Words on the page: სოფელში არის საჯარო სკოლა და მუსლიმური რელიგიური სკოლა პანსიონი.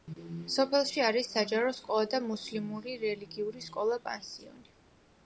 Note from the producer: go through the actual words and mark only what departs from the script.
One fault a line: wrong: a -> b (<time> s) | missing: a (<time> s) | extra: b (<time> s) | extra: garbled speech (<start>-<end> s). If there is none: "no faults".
no faults